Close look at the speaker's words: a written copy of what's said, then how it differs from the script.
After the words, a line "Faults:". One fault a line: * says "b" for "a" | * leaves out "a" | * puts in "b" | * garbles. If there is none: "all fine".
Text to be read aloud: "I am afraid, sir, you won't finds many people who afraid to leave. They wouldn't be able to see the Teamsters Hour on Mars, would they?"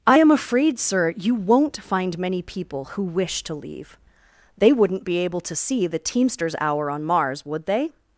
"I am afraid, sir, you won't find many people who wish to leave. They wouldn't be able to see the Teamsters Hour on Mars, would they?"
Faults:
* says "find" for "finds"
* says "wish" for "afraid"